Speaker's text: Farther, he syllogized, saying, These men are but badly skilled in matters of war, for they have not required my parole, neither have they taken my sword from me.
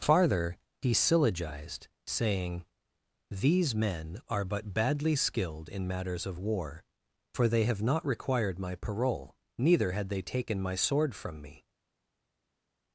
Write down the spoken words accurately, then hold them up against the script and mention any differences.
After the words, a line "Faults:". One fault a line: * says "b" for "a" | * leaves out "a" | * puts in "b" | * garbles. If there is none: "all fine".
Farther, he syllogized, saying, These men are but badly skilled in matters of war, for they have not required my parole, neither had they taken my sword from me.
Faults:
* says "had" for "have"